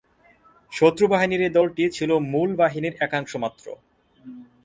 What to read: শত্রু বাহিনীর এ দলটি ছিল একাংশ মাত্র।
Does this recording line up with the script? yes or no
no